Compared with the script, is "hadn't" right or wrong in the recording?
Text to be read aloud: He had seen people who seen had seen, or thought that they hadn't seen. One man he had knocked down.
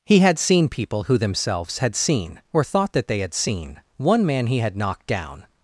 wrong